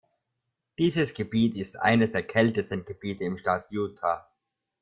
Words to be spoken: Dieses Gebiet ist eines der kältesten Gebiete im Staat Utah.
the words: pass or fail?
pass